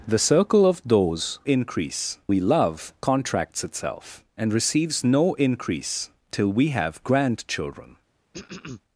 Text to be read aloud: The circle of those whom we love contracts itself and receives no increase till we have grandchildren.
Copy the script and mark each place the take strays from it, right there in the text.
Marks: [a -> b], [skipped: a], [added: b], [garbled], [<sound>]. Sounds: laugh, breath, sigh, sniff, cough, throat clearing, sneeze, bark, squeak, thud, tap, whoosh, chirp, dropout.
The circle of those [whom -> increase] we love contracts itself and receives no increase till we have grandchildren. [throat clearing]